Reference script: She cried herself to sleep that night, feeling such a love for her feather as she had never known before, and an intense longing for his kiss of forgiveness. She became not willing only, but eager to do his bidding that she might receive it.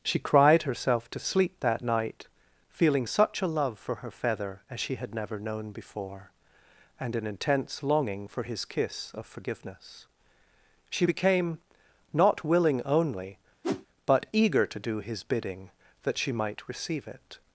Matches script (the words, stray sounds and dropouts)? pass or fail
fail